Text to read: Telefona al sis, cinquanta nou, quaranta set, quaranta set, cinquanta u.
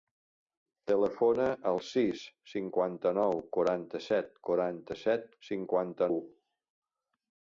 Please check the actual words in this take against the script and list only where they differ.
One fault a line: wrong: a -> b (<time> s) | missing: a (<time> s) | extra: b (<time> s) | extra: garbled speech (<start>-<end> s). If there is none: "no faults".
no faults